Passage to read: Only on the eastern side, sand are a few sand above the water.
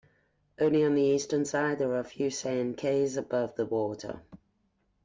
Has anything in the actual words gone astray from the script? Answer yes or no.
yes